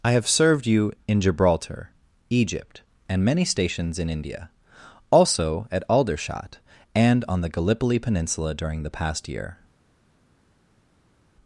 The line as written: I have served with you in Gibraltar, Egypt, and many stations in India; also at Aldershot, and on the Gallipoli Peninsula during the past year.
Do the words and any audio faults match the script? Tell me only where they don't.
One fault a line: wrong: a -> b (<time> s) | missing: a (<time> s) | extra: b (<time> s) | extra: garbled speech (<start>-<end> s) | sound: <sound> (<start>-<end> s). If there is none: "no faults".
missing: with (0.7 s)